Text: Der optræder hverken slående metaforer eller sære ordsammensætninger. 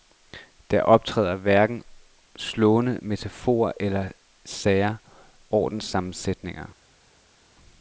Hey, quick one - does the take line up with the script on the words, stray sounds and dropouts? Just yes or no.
yes